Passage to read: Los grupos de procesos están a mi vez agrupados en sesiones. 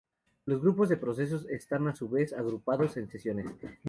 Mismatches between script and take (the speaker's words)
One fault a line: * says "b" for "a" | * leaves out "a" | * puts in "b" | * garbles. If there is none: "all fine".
* says "su" for "mi"